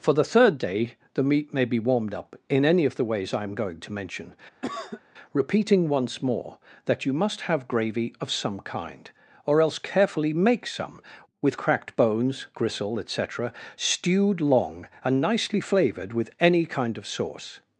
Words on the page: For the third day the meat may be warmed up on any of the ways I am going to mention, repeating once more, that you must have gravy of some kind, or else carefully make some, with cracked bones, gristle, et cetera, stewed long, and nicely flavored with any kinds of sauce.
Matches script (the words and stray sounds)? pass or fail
fail